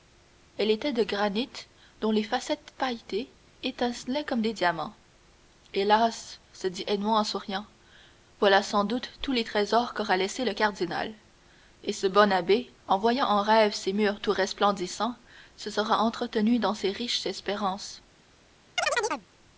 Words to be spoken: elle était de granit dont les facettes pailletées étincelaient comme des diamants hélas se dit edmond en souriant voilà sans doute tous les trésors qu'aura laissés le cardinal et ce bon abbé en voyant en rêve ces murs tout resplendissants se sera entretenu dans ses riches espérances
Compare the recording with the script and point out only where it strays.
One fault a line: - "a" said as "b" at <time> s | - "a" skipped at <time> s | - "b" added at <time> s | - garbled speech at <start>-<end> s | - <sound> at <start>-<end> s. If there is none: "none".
- chirp at 18.8-19.3 s